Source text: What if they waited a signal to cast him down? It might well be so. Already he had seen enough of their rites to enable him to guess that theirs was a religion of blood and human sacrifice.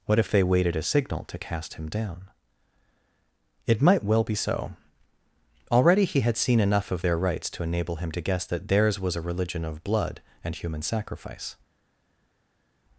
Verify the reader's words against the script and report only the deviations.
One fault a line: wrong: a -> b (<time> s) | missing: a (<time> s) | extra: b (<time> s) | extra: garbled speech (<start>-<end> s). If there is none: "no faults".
no faults